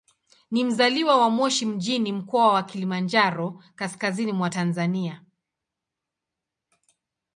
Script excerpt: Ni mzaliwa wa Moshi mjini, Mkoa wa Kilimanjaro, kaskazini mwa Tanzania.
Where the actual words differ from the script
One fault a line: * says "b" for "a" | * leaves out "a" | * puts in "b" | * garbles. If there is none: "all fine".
all fine